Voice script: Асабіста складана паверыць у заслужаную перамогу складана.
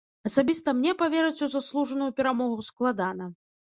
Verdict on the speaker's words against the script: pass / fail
fail